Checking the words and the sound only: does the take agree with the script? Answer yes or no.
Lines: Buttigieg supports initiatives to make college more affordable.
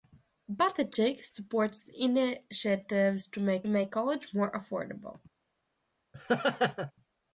no